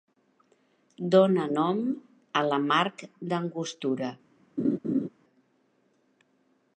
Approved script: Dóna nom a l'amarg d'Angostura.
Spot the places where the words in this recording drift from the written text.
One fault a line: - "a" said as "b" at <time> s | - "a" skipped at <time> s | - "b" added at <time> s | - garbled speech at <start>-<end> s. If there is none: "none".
none